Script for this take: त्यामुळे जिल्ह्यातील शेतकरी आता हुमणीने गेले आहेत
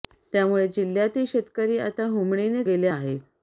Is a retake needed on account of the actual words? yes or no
no